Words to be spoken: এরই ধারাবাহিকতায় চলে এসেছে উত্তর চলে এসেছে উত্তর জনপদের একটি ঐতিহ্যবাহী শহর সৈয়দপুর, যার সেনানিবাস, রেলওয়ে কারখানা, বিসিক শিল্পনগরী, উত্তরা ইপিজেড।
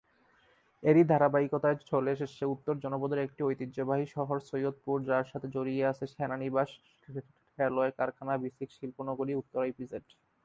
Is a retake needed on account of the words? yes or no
yes